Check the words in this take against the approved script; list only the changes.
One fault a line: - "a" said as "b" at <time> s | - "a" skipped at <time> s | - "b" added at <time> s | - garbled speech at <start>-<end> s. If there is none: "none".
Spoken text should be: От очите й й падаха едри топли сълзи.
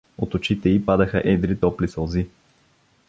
- "й" skipped at 0.9 s